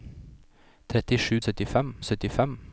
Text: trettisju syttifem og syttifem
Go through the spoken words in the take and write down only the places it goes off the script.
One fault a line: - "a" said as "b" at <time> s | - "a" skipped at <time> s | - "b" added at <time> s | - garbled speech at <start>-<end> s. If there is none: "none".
none